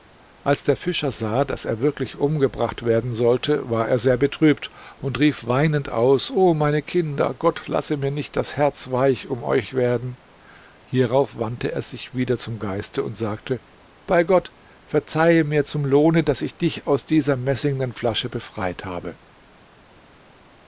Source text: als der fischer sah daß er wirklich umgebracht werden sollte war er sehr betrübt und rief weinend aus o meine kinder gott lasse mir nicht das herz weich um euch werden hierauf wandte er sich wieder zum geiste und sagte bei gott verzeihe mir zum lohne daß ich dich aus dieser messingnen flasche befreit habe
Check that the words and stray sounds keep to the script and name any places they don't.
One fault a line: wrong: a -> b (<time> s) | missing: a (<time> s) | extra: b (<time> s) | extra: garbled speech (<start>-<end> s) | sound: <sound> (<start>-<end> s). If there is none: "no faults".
no faults